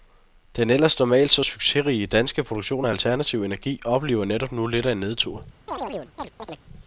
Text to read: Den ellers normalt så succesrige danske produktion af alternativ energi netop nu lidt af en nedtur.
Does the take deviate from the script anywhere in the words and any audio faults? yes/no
yes